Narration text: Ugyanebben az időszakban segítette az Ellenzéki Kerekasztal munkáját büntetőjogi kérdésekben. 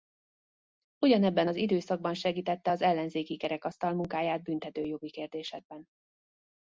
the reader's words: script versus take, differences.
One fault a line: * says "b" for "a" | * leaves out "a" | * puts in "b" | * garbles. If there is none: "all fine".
all fine